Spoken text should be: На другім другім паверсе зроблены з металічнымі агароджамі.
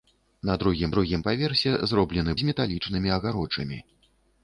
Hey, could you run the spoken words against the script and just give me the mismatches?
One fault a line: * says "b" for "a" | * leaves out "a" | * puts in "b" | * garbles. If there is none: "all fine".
all fine